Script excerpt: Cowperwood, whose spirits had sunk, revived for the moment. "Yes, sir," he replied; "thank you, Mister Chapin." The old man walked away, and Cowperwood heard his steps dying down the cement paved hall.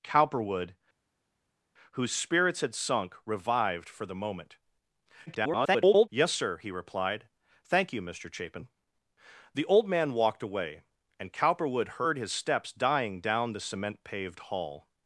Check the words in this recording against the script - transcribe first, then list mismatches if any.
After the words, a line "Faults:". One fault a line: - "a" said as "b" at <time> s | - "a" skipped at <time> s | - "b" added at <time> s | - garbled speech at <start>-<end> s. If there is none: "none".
Cowperwood, whose spirits had sunk, revived for the moment. [garbled] "Yes, sir," he replied; "thank you, Mister Chapin." The old man walked away, and Cowperwood heard his steps dying down the cement paved hall.
Faults:
- garbled speech at 5.3-6.1 s